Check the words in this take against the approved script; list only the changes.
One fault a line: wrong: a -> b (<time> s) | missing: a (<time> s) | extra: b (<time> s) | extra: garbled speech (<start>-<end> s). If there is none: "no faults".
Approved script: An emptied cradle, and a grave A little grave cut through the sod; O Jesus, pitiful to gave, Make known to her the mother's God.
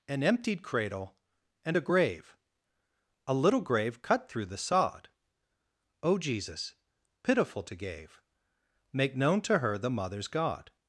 no faults